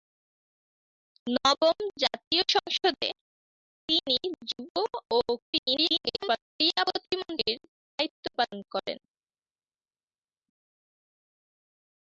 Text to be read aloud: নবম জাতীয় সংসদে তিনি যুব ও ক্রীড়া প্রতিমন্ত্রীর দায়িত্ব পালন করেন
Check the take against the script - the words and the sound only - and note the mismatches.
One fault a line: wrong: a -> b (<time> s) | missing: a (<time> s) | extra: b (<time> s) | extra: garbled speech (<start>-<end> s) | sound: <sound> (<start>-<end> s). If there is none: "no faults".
extra: garbled speech (5.4-6.4 s)